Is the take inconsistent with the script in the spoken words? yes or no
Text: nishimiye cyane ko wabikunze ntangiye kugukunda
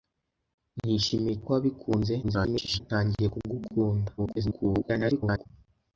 yes